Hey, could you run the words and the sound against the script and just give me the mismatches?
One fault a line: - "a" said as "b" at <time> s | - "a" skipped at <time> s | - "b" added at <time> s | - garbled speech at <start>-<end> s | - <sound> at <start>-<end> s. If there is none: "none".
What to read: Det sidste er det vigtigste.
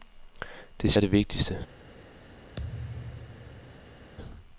- "sidste" skipped at 0.9 s
- thud at 2.6-4.1 s